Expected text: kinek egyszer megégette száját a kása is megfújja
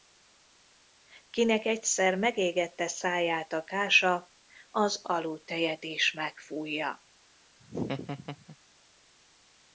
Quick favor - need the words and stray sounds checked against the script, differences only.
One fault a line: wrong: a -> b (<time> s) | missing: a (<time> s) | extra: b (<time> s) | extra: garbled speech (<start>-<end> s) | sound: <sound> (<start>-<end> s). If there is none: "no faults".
extra: az aludttejet (4.7 s)
sound: laugh (7.6-8.6 s)